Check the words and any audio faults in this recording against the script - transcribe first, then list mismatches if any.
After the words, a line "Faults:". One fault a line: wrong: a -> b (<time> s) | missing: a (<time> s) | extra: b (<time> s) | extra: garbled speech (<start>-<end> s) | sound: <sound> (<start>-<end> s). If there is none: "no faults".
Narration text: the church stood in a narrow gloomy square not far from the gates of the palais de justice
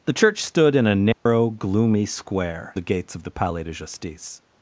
the church stood in a narrow gloomy square the gates of the palais de justice
Faults:
sound: dropout (1.1-1.3 s)
missing: not far from (2.7 s)